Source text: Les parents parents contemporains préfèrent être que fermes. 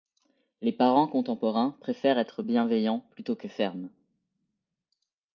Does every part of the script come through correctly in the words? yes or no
no